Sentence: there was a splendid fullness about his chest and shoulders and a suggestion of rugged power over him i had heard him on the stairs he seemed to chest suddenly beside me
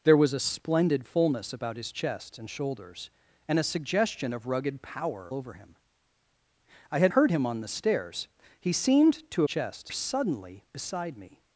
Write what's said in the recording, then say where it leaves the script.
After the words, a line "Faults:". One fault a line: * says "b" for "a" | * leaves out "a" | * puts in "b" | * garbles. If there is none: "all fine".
there was a splendid fullness about his chest and shoulders and a suggestion of rugged power over him i had heard him on the stairs he seemed to chest suddenly beside me
Faults:
all fine